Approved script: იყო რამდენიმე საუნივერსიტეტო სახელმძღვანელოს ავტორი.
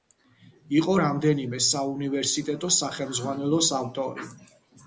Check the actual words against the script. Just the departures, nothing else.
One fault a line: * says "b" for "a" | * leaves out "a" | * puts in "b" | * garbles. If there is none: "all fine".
all fine